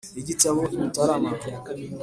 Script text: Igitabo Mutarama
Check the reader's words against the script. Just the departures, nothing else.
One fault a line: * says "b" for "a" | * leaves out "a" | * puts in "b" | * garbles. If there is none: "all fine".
all fine